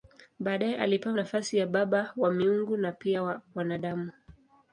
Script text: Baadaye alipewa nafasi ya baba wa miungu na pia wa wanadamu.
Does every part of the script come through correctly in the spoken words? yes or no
yes